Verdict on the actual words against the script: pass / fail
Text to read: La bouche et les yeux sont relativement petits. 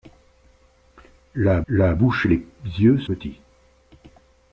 fail